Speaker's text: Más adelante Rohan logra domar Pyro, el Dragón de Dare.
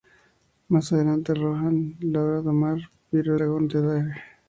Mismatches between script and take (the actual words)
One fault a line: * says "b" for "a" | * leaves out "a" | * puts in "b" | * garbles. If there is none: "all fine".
* leaves out "el"